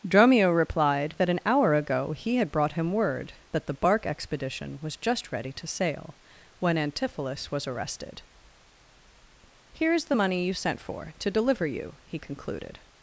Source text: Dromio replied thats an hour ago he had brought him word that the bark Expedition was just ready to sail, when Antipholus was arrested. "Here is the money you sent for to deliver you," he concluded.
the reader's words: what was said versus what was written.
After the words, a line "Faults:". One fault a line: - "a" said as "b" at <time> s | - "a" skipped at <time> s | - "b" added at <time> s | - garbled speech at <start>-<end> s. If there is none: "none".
Dromio replied that an hour ago he had brought him word that the bark Expedition was just ready to sail, when Antipholus was arrested. "Here is the money you sent for to deliver you," he concluded.
Faults:
- "thats" said as "that" at 1.2 s